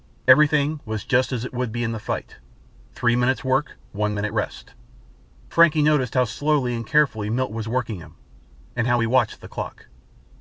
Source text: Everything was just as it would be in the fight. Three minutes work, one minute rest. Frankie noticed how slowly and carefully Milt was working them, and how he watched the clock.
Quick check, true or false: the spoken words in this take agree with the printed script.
false